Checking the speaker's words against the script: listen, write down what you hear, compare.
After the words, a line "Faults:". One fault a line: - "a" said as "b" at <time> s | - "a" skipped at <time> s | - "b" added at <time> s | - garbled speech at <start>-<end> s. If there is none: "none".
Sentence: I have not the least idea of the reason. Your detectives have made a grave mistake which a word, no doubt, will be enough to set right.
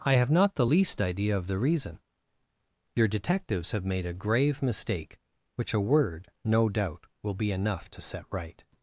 I have not the least idea of the reason. Your detectives have made a grave mistake which a word, no doubt, will be enough to set right.
Faults:
none